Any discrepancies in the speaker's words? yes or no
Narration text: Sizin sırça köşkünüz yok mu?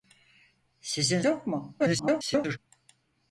yes